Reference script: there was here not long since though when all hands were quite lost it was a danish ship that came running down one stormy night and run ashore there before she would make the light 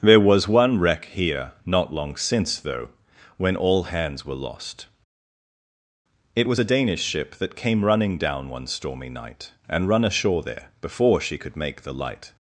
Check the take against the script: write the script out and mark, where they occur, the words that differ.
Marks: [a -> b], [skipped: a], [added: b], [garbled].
there was [added: one wreck] here not long since though when all hands were [skipped: quite] lost it was a danish ship that came running down one stormy night and run ashore there before she [would -> could] make the light